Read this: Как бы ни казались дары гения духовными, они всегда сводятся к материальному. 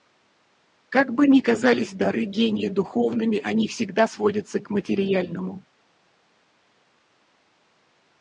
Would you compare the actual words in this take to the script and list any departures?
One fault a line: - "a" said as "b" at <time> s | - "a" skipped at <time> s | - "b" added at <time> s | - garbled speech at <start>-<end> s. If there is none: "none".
none